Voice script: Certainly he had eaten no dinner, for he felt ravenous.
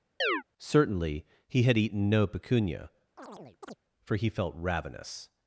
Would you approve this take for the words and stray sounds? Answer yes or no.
no